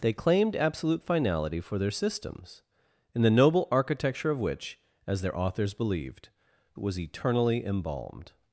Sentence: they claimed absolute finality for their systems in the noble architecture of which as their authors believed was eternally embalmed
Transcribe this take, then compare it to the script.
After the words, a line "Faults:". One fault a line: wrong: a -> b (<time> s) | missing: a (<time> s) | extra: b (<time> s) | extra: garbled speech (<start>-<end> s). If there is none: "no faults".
they claimed absolute finality for their systems in the noble architecture of which as their authors believed was eternally embalmed
Faults:
no faults